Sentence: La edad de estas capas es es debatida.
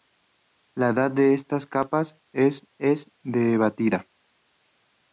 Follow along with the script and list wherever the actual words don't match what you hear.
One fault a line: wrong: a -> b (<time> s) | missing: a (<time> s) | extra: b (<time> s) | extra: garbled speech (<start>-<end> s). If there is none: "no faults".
no faults